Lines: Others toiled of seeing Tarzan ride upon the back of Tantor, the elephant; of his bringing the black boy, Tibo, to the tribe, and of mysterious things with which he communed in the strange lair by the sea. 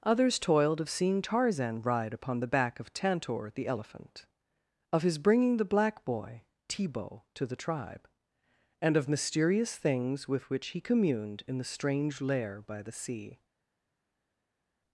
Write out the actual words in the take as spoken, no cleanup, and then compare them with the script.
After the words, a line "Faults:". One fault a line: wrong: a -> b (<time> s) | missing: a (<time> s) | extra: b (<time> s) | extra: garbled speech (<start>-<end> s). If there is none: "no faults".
Others toiled of seeing Tarzan ride upon the back of Tantor, the elephant; of his bringing the black boy, Tibo, to the tribe, and of mysterious things with which he communed in the strange lair by the sea.
Faults:
no faults